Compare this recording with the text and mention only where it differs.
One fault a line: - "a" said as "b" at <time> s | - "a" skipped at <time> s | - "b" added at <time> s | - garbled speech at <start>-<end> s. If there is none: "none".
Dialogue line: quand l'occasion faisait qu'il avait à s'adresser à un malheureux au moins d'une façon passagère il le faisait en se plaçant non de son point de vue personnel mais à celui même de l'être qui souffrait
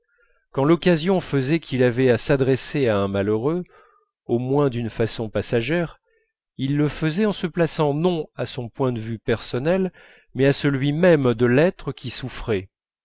- "de" said as "à" at 8.4 s